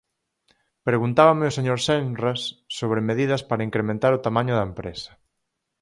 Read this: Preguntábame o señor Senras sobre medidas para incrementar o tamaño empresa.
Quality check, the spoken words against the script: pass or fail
fail